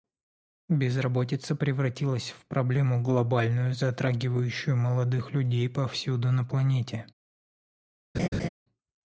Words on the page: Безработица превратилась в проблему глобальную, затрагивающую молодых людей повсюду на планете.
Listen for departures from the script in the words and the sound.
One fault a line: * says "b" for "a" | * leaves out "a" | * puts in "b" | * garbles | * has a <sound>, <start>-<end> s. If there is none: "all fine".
* has a laugh, 8.1-8.5 s